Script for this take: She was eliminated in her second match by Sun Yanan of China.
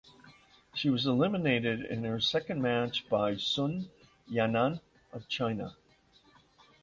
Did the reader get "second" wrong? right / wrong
right